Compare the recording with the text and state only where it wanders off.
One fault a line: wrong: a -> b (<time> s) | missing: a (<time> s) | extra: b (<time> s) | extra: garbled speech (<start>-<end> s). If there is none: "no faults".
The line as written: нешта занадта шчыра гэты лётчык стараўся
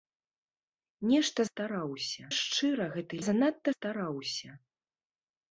wrong: занадта -> стараўся (1.5 s)
wrong: лётчык -> занадта (3.3 s)